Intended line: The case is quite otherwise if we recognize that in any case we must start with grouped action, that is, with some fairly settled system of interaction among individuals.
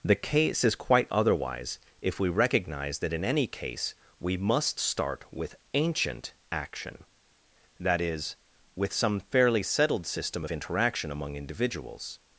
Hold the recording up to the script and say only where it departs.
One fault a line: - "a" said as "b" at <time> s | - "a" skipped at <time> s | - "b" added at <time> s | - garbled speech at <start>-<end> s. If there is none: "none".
- "grouped" said as "ancient" at 5.8 s